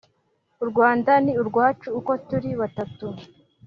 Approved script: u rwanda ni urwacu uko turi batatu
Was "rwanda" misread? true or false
false